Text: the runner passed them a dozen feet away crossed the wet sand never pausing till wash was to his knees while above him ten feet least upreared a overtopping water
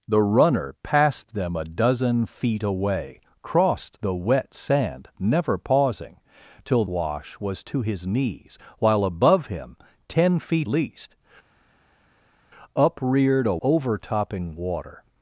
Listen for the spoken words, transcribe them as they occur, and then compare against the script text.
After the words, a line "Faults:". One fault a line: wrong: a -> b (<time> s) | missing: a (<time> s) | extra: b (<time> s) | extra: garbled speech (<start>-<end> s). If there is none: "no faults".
the runner passed them a dozen feet away crossed the wet sand never pausing till wash was to his knees while above him ten feet least upreared a overtopping water
Faults:
no faults